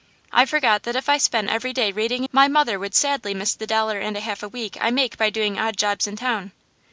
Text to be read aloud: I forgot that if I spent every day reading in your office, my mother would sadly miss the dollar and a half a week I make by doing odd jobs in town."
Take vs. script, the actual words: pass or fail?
fail